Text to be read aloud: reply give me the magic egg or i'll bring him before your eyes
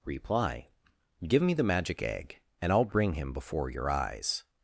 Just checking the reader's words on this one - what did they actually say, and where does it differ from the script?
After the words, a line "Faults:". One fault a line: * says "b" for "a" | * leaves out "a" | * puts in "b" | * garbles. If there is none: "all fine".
reply give me the magic egg and i'll bring him before your eyes
Faults:
* says "and" for "or"